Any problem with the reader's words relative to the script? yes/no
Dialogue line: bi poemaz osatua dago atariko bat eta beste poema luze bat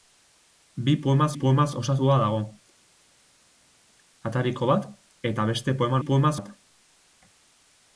yes